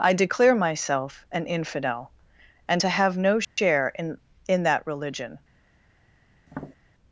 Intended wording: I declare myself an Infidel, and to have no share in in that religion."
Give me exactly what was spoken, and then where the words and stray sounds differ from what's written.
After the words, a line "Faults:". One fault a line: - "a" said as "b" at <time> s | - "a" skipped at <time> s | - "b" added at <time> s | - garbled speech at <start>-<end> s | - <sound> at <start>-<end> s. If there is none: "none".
I declare myself an Infidel, and to have no share in in that religion."
Faults:
- dropout at 3.4-3.6 s
- tap at 6.5-6.8 s